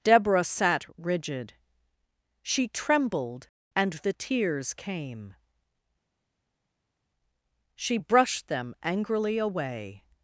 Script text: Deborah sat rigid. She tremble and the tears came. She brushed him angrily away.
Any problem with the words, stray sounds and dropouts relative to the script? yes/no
yes